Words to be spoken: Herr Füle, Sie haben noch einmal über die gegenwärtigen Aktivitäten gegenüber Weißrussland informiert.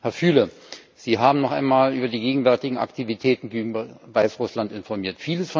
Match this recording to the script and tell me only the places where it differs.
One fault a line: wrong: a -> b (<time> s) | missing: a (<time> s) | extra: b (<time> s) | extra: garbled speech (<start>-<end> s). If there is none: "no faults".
no faults